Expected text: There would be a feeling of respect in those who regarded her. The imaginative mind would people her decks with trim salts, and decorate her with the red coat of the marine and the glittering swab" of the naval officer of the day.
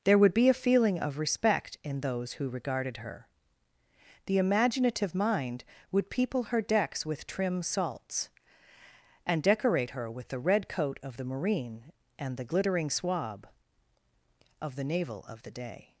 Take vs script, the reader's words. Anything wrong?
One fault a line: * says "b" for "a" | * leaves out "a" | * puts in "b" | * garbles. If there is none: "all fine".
* leaves out "officer"